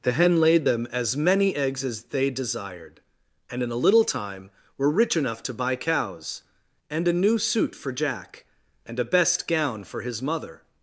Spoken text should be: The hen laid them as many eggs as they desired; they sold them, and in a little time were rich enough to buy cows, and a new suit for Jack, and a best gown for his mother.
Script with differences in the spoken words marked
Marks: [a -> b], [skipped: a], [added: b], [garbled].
The hen laid them as many eggs as they desired; [skipped: they sold them,] and in a little time were rich enough to buy cows, and a new suit for Jack, and a best gown for his mother.